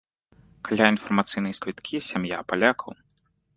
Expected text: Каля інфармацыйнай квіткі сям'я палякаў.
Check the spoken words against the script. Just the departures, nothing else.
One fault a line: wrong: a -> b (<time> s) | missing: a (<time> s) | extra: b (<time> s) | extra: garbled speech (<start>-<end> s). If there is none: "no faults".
no faults